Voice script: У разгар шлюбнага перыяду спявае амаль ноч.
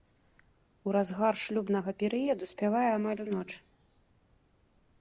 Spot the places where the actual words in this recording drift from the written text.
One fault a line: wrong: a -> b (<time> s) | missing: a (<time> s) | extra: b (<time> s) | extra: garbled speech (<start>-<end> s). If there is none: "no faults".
no faults